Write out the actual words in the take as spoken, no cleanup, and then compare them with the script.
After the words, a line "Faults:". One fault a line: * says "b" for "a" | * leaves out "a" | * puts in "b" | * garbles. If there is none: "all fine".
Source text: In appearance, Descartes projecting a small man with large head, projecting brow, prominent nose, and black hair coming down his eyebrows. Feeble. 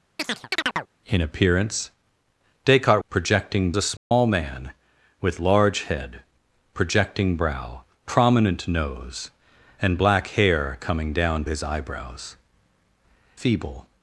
In appearance, Descartes projecting a small man with large head, projecting brow, prominent nose, and black hair coming down his eyebrows. Feeble.
Faults:
all fine